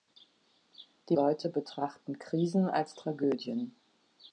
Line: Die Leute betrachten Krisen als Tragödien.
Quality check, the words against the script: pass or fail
pass